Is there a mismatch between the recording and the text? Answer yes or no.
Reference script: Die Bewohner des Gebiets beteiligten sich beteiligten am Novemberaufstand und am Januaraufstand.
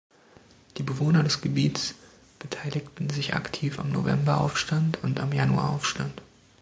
yes